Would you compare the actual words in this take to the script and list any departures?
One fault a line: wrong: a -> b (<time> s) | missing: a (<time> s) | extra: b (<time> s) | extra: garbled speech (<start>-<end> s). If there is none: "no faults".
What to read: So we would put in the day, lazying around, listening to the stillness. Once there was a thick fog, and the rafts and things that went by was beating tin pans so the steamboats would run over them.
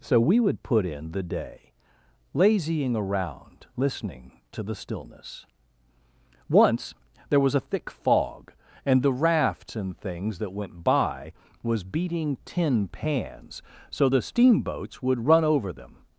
no faults